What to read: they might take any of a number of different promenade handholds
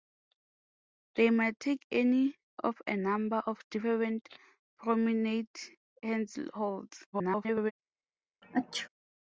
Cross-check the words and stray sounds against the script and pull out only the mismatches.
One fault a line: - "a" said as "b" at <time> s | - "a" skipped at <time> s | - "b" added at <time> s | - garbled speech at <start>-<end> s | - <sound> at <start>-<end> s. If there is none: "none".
- garbled speech at 7.1-7.7 s
- sneeze at 8.4-8.9 s